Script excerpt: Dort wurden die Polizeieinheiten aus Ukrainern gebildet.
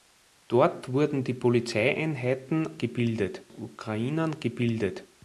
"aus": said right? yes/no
no